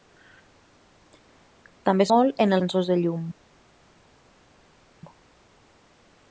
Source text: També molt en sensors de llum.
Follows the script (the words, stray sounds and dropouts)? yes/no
yes